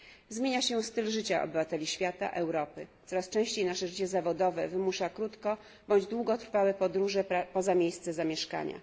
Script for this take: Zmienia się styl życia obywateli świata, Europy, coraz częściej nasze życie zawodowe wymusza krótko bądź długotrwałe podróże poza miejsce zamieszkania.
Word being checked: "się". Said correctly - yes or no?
yes